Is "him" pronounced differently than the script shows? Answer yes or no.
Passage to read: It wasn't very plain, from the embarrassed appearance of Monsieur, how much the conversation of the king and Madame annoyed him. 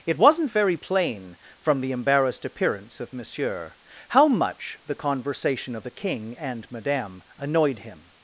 no